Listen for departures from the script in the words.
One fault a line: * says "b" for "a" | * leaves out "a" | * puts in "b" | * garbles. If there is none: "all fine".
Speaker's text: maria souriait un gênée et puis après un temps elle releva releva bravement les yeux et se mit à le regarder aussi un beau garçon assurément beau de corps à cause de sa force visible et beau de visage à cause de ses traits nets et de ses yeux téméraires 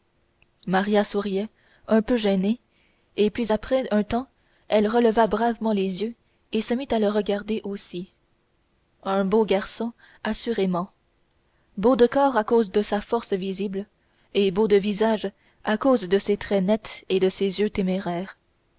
* puts in "peu"
* leaves out "releva"